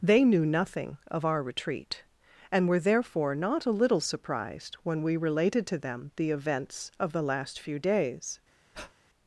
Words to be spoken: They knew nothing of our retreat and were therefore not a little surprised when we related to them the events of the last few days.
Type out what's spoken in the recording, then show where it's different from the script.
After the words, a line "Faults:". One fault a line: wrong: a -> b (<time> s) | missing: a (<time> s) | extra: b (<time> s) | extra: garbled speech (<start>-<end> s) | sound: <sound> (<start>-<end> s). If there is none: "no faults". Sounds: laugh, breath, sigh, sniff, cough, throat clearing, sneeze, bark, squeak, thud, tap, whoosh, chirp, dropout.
They knew nothing of our retreat and were therefore not a little surprised when we related to them the events of the last few days.
Faults:
sound: breath (8.7-8.9 s)